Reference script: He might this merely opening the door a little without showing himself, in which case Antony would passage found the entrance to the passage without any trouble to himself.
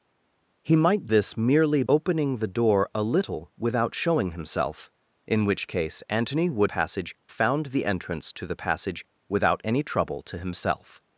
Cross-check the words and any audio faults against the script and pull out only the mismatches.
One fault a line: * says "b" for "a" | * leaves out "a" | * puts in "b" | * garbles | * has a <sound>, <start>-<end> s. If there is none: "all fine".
all fine